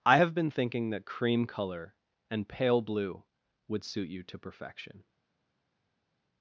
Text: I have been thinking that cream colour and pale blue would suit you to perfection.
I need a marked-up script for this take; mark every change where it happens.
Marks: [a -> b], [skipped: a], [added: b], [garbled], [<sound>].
I have been thinking that cream colour and pale blue would suit you to perfection.